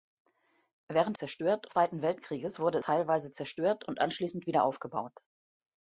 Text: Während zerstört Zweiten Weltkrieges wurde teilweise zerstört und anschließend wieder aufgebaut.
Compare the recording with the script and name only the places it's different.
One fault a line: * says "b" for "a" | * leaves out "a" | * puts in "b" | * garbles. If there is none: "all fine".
all fine